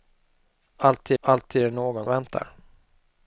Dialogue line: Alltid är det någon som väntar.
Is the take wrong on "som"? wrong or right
wrong